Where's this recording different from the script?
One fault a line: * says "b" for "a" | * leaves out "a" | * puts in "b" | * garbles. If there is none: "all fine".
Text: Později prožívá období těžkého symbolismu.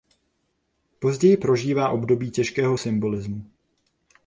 all fine